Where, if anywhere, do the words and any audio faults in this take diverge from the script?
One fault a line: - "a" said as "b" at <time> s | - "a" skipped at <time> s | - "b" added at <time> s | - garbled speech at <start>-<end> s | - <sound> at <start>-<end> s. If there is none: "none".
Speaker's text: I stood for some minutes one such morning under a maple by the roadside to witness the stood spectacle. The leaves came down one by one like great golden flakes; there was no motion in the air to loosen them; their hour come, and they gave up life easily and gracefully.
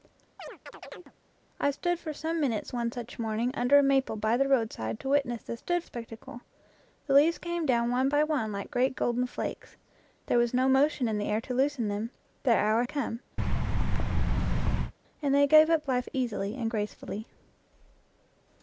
- chirp at 0.4-1.1 s
- thud at 13.4-14.9 s